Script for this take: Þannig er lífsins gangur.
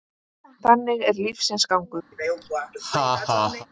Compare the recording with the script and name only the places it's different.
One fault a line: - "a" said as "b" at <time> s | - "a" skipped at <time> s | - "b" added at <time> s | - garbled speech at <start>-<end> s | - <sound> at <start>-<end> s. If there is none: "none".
- laugh at 2.1-3.7 s